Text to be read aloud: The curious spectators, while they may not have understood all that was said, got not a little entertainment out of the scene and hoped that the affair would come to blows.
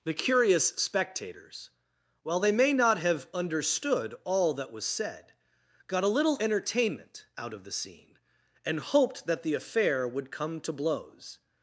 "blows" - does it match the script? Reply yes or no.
yes